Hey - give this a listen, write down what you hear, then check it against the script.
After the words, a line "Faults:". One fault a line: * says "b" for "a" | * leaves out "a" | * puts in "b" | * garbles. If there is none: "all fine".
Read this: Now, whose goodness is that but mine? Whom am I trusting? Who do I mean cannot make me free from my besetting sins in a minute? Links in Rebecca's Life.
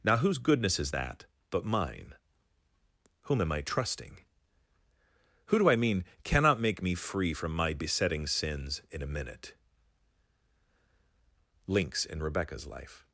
Now, whose goodness is that but mine? Whom am I trusting? Who do I mean cannot make me free from my besetting sins in a minute? Links in Rebecca's Life.
Faults:
all fine